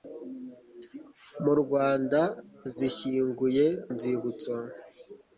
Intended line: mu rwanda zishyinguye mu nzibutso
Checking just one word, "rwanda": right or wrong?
right